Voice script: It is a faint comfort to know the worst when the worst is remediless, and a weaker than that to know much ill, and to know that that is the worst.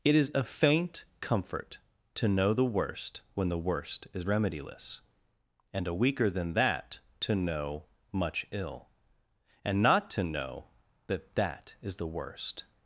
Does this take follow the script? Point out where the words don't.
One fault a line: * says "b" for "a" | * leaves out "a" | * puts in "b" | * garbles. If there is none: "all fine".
* puts in "not"